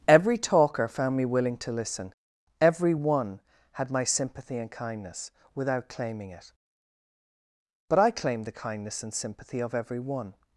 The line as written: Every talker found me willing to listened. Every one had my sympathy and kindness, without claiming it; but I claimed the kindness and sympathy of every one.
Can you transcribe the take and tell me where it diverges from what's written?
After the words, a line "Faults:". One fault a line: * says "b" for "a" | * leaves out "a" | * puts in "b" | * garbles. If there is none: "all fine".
Every talker found me willing to listen. Every one had my sympathy and kindness, without claiming it; but I claimed the kindness and sympathy of every one.
Faults:
* says "listen" for "listened"